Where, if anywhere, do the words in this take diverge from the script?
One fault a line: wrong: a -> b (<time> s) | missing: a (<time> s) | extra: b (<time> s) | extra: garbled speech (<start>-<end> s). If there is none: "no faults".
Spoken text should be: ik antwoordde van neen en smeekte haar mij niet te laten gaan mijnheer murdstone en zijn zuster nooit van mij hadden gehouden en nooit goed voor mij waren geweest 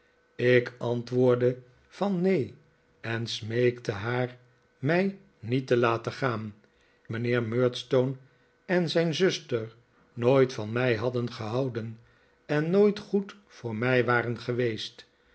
no faults